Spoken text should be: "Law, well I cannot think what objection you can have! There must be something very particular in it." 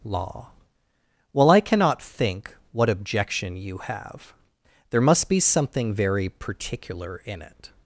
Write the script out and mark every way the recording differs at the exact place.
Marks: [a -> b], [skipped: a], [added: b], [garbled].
"Law, well I cannot think what objection you [skipped: can] have! There must be something very particular in it."